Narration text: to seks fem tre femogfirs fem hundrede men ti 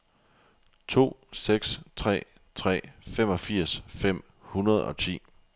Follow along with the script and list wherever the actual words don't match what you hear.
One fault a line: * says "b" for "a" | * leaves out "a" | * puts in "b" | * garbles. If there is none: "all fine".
* says "tre" for "fem"
* says "og" for "men"